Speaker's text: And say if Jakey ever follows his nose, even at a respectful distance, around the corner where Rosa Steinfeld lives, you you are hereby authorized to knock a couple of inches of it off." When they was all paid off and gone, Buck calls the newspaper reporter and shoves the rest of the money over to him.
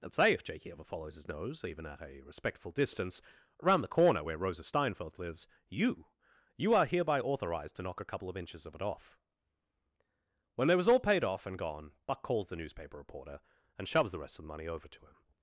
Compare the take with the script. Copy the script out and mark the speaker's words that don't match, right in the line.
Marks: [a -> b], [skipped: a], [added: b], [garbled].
And say if Jakey ever follows his nose, even at a respectful distance, around the corner where Rosa Steinfeld lives, you you are hereby authorized to knock a couple of inches of it off." When they was all paid off and gone, Buck calls the newspaper reporter and shoves the rest of the money over to him.